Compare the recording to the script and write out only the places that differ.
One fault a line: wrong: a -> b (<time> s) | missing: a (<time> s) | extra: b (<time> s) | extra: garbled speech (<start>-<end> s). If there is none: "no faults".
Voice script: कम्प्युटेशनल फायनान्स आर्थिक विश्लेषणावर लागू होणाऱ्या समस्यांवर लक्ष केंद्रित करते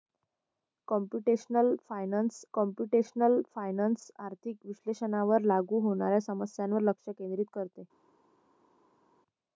extra: कम्प्युटेशनल फायनान्स (2.5 s)